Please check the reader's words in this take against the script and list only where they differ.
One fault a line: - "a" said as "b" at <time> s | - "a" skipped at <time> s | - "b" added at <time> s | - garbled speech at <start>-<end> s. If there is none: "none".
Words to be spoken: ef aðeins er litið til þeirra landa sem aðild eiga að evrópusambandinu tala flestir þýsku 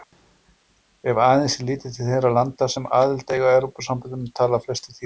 none